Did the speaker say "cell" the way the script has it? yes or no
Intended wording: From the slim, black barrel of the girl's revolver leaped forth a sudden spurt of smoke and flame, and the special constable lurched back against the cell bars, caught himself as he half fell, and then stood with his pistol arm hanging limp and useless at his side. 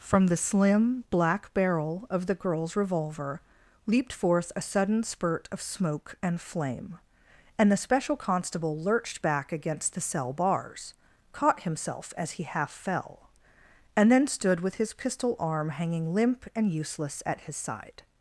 yes